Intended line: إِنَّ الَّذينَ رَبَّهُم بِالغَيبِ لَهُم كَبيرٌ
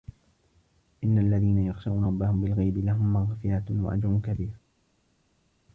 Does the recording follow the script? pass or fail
fail